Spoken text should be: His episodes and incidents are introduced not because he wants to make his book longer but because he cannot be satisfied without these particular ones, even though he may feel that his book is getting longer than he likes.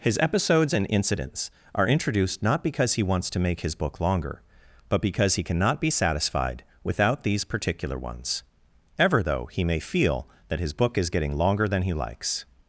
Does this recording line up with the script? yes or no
no